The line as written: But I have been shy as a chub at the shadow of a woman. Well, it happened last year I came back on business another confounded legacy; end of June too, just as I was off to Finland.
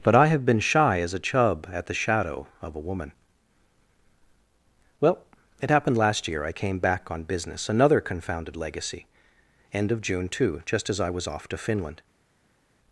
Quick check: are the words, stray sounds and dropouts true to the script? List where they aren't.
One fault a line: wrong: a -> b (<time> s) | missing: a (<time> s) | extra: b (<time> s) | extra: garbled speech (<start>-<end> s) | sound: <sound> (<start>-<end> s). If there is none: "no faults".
no faults